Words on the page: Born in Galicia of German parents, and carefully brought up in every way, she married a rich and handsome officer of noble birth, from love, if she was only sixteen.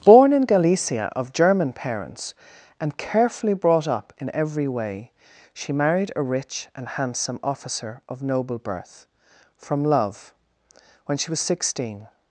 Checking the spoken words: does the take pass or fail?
fail